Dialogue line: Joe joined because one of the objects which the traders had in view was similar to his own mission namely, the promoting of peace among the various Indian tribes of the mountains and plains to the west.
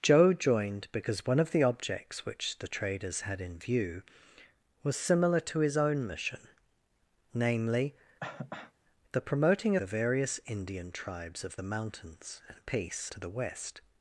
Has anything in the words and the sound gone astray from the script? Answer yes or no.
yes